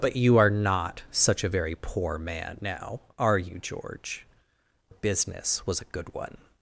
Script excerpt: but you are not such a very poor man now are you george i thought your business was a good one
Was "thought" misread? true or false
true